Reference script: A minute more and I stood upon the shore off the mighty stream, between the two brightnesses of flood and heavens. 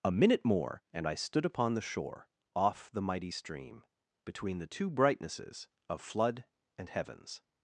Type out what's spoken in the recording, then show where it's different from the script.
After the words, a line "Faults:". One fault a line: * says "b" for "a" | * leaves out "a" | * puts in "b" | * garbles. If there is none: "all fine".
A minute more and I stood upon the shore off the mighty stream, between the two brightnesses of flood and heavens.
Faults:
all fine